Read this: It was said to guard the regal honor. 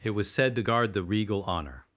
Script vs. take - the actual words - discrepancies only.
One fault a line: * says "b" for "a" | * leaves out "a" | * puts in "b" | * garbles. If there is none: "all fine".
all fine